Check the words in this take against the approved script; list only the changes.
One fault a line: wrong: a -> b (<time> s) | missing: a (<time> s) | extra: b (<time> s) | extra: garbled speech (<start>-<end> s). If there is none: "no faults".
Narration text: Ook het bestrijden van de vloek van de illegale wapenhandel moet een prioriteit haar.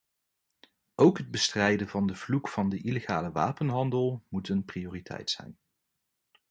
wrong: haar -> zijn (5.3 s)